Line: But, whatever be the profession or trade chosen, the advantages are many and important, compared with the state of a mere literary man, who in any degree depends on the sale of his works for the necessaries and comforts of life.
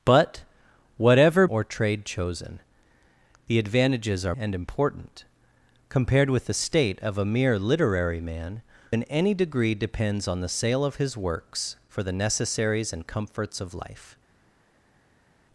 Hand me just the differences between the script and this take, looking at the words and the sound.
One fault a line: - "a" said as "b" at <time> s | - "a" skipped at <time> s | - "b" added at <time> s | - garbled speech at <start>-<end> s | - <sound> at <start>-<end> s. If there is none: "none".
- "be the profession" skipped at 1.4 s
- "many" skipped at 4.3 s
- "who" skipped at 8.6 s